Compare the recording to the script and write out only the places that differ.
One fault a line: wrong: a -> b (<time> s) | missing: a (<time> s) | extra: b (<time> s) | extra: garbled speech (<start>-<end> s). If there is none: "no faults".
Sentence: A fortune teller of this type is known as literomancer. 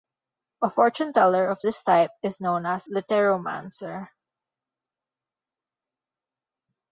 no faults